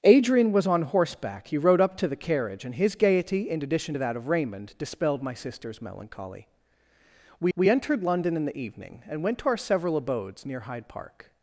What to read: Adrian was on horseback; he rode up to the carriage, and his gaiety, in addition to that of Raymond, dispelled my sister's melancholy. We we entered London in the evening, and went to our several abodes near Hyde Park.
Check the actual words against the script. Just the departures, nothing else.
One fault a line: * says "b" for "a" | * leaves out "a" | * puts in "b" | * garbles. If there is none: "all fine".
all fine